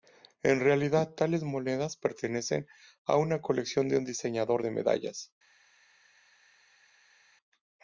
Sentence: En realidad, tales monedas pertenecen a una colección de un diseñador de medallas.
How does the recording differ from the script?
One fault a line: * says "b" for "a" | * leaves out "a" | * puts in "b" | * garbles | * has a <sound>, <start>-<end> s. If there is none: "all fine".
all fine